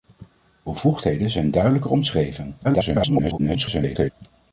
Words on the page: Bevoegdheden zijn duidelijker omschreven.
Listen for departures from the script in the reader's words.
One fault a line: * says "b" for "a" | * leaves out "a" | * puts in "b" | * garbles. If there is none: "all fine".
* garbles